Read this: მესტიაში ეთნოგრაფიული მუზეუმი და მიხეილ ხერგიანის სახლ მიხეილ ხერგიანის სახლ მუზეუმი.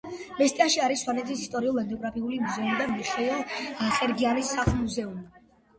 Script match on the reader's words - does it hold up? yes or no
no